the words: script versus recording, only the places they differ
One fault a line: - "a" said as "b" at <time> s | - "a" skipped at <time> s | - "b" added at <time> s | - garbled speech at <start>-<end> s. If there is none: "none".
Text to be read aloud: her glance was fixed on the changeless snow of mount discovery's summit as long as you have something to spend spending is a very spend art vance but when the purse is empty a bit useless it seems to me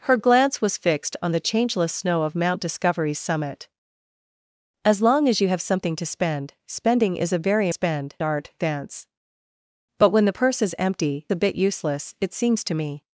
none